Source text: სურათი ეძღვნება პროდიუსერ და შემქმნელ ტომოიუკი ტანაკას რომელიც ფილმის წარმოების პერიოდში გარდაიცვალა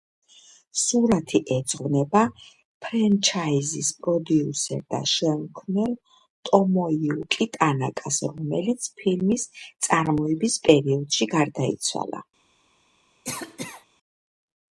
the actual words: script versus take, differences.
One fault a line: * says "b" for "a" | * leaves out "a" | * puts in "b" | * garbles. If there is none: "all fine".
* puts in "ფრენჩაიზის"